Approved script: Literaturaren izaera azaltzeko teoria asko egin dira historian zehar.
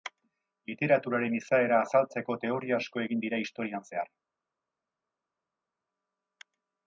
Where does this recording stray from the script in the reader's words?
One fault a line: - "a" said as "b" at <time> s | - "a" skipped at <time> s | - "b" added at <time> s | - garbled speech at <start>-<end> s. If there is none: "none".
none